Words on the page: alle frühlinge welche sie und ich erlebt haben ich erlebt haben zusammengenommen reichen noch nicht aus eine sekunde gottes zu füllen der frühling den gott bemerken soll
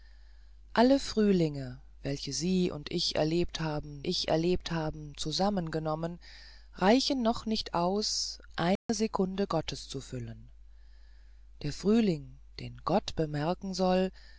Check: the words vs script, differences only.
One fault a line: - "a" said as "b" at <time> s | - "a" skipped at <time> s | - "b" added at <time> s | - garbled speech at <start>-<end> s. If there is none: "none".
none